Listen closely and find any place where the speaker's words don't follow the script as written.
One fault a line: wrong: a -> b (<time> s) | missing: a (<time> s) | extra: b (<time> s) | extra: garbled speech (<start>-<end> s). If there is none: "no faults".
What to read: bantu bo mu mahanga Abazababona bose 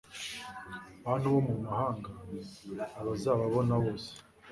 no faults